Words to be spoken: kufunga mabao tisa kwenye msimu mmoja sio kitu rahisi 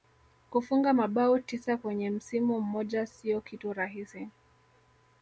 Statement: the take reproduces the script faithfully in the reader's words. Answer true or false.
true